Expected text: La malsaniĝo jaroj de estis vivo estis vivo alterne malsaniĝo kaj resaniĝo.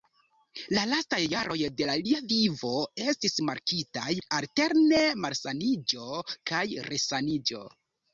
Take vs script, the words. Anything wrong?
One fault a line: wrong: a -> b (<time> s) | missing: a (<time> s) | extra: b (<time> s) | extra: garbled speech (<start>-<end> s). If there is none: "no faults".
wrong: malsaniĝo -> lastaj (0.9 s)
wrong: estis -> lia (2.1 s)
wrong: vivo -> markitaj (3.5 s)